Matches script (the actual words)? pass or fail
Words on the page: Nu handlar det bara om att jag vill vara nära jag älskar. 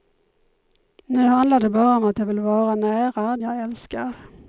pass